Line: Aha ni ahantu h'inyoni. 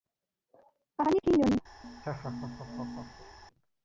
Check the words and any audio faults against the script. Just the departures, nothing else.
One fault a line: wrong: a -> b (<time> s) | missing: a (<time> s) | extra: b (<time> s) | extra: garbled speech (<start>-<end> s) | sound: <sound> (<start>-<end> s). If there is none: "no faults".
missing: ahantu (1.2 s)
sound: laugh (1.8-3.4 s)